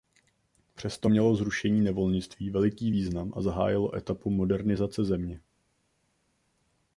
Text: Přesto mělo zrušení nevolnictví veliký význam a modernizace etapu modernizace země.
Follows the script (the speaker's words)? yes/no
no